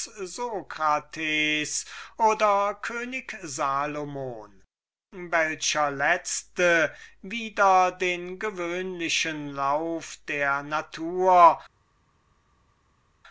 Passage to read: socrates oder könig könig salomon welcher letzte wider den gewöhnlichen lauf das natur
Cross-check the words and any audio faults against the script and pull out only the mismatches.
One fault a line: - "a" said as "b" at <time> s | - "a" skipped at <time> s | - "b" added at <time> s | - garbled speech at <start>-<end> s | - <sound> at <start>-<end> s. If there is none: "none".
- "könig" skipped at 3.4 s
- "das" said as "der" at 10.3 s